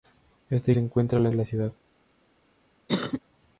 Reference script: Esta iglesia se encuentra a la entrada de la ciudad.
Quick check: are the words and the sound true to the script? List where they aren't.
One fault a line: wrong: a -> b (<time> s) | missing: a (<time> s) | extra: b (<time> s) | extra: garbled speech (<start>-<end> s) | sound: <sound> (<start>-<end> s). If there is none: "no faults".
missing: iglesia (0.7 s)
missing: entrada (1.3 s)
sound: cough (2.9-3.2 s)